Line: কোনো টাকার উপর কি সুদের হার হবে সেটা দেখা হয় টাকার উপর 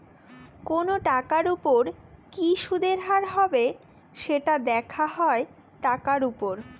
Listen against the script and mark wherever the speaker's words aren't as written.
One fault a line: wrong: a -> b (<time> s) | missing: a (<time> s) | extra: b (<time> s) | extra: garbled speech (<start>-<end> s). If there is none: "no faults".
no faults